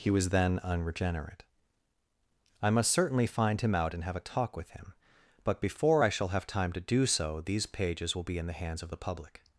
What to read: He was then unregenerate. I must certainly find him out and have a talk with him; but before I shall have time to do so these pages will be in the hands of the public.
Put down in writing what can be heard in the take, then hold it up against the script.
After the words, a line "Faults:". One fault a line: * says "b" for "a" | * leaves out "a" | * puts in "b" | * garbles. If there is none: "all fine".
He was then unregenerate. I must certainly find him out and have a talk with him; but before I shall have time to do so these pages will be in the hands of the public.
Faults:
all fine